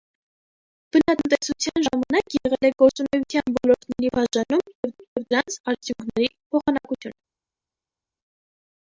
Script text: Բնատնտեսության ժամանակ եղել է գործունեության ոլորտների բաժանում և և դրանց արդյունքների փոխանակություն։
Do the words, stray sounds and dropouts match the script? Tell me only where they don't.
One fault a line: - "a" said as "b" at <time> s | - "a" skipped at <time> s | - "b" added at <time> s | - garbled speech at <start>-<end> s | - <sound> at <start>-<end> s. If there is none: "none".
none